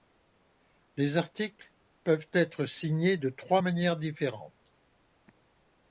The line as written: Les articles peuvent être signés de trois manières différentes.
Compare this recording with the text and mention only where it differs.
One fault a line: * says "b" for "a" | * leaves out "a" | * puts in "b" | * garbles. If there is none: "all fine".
all fine